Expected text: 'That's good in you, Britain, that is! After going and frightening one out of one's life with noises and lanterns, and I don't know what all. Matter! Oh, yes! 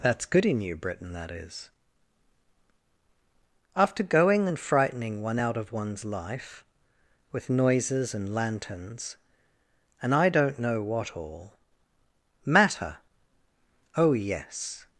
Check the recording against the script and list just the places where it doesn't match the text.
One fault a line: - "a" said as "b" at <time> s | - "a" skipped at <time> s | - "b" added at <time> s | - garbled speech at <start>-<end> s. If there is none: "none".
none